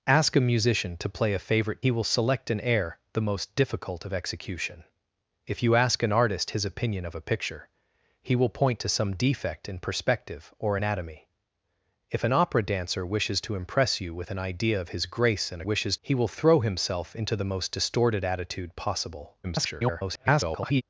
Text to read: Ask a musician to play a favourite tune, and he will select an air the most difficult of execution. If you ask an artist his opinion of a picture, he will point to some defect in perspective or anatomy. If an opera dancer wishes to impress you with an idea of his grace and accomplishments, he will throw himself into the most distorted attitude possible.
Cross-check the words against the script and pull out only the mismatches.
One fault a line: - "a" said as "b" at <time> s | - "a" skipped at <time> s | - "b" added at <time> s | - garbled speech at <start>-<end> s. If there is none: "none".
- "tune and" skipped at 1.8 s
- "accomplishments" said as "wishes" at 15.6 s
- garbled speech at 19.4-20.8 s